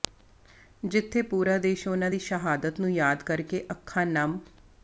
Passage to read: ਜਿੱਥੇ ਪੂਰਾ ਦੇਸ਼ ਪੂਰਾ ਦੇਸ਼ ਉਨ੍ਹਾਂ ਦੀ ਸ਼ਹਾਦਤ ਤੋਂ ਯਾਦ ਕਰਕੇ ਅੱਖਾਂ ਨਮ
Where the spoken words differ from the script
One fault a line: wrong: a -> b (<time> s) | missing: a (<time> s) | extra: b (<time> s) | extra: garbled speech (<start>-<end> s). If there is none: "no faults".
missing: ਪੂਰਾ ਦੇਸ਼ (1.9 s)
wrong: ਤੋਂ -> ਨੂੰ (2.8 s)